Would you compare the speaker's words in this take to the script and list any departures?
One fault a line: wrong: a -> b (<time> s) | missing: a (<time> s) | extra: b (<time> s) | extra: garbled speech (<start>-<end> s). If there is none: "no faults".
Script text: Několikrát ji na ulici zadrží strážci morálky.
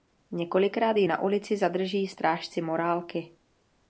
no faults